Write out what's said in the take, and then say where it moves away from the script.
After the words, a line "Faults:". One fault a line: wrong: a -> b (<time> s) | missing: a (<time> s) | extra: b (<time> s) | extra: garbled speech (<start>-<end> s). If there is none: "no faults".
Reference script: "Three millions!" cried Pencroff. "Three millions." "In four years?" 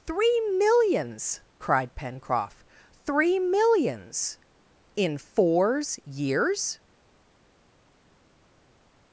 "Three millions!" cried Pencroff. "Three millions." "In fours years?"
Faults:
wrong: four -> fours (5.1 s)